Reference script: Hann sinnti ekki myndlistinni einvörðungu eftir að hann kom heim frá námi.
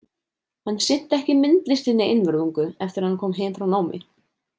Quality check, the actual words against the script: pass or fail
pass